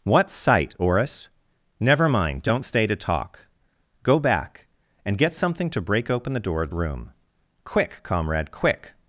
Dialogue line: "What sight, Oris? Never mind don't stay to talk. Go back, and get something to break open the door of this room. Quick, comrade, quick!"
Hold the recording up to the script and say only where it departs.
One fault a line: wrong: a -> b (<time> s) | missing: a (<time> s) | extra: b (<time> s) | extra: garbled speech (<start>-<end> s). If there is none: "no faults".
missing: this (6.7 s)